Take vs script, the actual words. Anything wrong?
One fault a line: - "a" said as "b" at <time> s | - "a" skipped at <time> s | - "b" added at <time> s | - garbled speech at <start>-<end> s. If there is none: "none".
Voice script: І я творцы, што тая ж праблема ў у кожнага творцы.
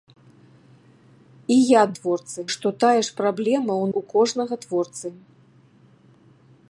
none